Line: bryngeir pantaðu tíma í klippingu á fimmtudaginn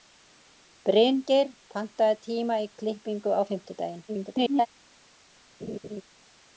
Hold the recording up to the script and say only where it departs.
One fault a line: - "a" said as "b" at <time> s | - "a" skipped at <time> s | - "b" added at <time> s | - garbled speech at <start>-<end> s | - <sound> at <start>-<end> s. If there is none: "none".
- garbled speech at 4.1-4.7 s
- laugh at 5.6-6.0 s